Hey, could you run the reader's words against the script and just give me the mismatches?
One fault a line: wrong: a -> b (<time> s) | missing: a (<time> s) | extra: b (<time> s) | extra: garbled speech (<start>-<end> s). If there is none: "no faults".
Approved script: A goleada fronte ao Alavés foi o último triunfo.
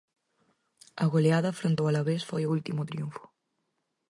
no faults